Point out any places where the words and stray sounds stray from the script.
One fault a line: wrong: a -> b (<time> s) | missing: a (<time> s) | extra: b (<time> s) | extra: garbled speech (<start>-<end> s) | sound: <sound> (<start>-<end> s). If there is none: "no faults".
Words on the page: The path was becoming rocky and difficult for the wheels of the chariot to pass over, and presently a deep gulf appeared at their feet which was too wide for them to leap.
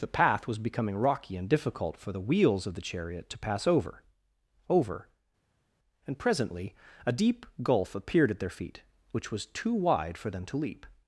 extra: over (4.7 s)